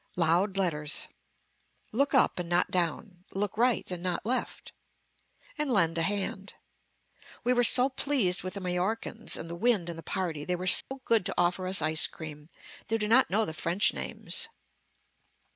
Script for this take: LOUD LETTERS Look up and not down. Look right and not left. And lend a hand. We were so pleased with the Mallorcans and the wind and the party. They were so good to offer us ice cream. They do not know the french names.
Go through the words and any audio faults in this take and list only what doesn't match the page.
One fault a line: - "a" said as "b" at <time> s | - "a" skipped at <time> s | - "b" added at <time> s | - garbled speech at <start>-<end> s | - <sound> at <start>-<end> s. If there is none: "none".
- dropout at 10.8-10.9 s